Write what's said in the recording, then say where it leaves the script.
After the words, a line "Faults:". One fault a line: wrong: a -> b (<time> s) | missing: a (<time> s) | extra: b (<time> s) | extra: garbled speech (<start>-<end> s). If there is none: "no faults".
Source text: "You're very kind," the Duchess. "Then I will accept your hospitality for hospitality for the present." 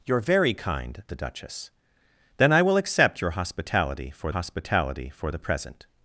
"You're very kind," the Duchess. "Then I will accept your hospitality for hospitality for the present."
Faults:
no faults